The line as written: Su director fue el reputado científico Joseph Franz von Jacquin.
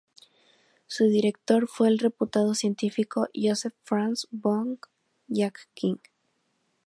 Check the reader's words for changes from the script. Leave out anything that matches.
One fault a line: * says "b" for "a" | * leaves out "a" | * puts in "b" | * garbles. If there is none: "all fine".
all fine